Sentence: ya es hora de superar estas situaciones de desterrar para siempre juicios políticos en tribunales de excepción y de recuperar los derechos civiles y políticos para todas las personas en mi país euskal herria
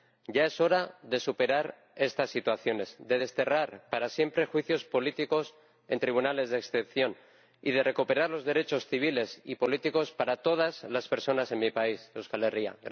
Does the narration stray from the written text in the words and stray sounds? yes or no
no